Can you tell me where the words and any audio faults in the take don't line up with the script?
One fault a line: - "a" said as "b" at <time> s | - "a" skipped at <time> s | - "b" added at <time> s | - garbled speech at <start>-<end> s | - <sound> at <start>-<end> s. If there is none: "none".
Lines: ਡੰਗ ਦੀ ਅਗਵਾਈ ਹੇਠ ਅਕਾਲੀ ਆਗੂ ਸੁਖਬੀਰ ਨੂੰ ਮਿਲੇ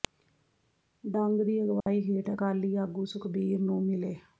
- dropout at 1.8-1.9 s